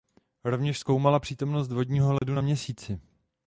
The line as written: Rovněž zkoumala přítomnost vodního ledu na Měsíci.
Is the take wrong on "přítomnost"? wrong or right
right